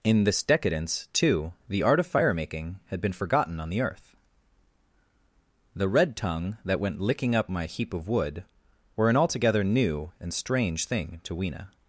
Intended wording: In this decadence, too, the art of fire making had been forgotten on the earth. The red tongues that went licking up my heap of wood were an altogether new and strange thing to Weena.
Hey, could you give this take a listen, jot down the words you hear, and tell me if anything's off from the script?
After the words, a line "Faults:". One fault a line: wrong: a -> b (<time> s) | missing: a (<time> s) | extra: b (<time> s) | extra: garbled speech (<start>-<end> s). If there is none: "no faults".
In this decadence, too, the art of fire making had been forgotten on the earth. The red tongue that went licking up my heap of wood were an altogether new and strange thing to Weena.
Faults:
wrong: tongues -> tongue (6.2 s)